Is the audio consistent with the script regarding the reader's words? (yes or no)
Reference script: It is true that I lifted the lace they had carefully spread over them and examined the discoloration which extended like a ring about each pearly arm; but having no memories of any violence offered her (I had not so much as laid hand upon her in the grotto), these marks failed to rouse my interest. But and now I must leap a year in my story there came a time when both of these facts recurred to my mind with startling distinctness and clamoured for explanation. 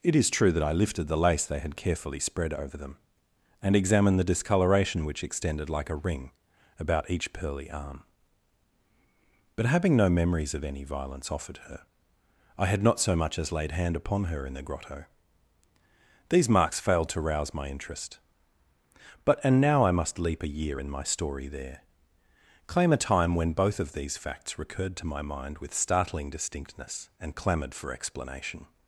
no